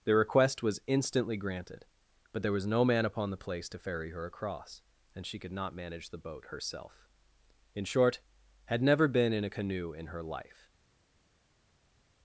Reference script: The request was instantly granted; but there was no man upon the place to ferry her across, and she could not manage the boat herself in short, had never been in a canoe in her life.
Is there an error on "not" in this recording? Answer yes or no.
no